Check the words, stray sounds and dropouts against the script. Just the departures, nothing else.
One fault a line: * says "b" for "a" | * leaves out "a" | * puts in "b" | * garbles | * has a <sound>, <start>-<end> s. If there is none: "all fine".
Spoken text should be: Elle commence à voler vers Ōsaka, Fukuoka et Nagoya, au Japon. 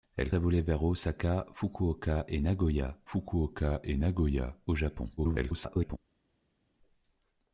* leaves out "commence"
* puts in "Fukuoka et Nagoya"
* garbles